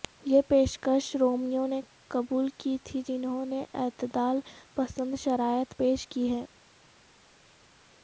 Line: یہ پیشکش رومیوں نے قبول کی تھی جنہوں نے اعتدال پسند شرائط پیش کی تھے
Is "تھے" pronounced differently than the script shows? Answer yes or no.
yes